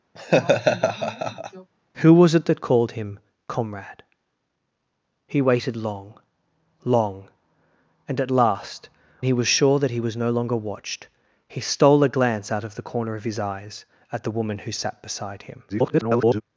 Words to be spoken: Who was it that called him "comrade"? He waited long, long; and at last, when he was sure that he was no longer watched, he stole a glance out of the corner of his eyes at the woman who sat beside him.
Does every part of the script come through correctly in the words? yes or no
no